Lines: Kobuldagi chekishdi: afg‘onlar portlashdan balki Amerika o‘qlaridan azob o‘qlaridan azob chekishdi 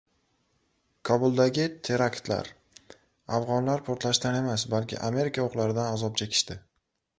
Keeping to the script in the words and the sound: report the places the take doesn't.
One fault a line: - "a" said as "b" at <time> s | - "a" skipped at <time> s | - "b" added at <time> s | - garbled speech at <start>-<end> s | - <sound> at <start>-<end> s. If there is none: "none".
- "chekishdi" said as "teraktlar" at 1.9 s
- "emas" added at 4.4 s
- "o‘qlaridan azob" skipped at 6.2 s